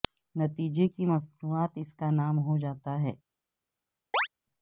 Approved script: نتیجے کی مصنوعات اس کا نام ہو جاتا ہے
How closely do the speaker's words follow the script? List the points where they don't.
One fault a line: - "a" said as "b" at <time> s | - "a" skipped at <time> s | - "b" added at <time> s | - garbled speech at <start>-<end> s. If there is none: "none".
none